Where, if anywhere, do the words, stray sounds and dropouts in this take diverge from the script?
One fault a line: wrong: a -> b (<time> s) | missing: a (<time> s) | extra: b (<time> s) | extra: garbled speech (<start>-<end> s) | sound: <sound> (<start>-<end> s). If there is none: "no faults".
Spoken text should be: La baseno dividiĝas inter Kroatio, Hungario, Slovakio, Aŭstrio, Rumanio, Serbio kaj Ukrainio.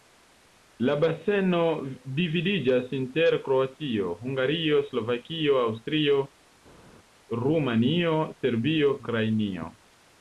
missing: kaj (9.0 s)